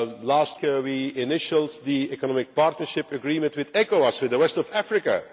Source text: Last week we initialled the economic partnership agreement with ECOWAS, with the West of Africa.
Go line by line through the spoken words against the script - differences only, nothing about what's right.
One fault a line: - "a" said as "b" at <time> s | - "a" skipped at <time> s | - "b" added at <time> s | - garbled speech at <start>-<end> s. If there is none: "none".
- "week" skipped at 0.6 s